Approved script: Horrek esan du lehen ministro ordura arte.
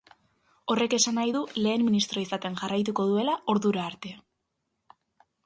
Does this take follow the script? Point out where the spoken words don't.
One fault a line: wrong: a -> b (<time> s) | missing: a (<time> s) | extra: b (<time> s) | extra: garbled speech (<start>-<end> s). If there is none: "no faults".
extra: nahi (1.2 s)
extra: izaten jarraituko duela (2.2 s)